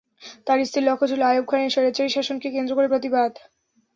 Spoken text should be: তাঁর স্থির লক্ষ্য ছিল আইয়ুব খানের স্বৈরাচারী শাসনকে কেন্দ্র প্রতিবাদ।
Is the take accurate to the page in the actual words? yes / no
no